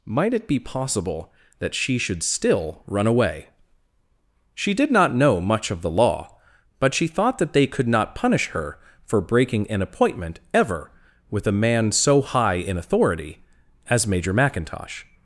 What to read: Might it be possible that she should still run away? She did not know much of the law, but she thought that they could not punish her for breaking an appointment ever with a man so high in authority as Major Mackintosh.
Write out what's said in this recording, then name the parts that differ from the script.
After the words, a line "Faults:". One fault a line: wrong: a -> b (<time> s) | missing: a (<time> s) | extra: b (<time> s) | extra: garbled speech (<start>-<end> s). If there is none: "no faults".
Might it be possible that she should still run away? She did not know much of the law, but she thought that they could not punish her for breaking an appointment ever with a man so high in authority as Major Mackintosh.
Faults:
no faults